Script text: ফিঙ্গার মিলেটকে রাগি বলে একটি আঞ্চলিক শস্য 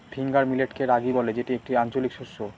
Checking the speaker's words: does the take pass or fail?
fail